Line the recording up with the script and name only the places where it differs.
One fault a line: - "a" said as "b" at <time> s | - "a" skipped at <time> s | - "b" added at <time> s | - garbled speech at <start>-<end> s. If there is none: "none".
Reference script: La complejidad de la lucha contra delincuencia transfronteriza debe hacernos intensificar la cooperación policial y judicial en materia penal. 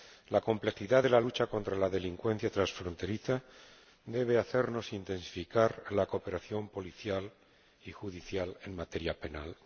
- "la" added at 1.8 s